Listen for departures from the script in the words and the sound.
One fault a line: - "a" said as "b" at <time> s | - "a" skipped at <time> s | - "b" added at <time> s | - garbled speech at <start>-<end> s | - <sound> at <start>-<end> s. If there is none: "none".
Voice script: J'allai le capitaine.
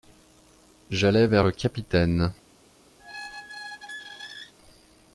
- "vers" added at 1.3 s
- squeak at 3.0-4.5 s